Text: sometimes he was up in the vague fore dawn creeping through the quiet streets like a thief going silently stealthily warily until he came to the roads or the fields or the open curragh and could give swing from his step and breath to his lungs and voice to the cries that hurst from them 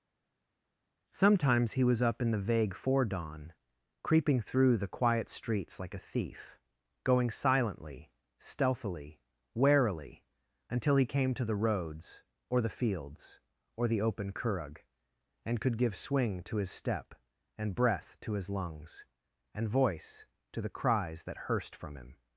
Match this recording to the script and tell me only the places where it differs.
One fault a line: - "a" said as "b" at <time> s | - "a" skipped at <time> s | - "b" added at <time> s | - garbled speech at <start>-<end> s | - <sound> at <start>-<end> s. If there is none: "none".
- "from" said as "to" at 16.4 s
- "them" said as "him" at 22.0 s